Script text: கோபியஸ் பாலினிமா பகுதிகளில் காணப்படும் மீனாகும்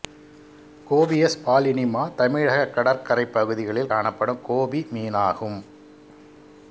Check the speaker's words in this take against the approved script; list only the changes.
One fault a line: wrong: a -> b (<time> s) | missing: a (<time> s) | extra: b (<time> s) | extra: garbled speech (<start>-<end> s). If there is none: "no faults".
extra: தமிழகக் கடற்கரைப் (2.1 s)
extra: கோபி (4.4 s)